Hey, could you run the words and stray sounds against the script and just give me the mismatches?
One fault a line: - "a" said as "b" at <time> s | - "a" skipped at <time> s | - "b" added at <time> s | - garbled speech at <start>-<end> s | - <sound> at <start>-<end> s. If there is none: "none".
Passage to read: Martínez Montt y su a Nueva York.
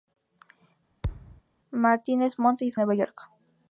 - thud at 1.0-1.4 s